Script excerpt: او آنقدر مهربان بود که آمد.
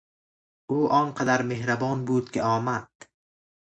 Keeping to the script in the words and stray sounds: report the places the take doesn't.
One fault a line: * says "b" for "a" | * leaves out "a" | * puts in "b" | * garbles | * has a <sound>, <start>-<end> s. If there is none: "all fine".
all fine